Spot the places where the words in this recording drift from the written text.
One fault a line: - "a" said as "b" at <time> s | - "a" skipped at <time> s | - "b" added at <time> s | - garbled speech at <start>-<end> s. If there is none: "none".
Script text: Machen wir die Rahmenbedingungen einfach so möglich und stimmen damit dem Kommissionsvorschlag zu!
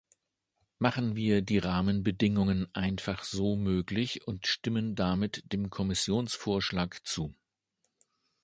none